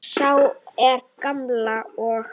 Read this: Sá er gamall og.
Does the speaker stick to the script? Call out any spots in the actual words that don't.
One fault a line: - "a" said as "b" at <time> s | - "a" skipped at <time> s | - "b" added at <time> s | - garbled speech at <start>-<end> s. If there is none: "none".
none